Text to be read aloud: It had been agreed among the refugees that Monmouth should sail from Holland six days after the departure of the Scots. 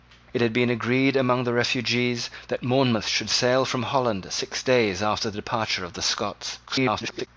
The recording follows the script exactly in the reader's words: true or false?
false